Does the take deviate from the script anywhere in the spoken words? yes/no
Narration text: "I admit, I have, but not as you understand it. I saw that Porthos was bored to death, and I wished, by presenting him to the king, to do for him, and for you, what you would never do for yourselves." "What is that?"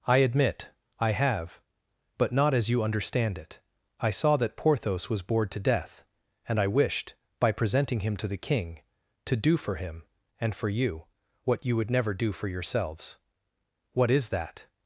no